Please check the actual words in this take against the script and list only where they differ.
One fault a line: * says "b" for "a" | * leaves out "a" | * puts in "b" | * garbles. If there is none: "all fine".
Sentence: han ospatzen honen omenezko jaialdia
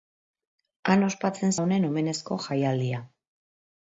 all fine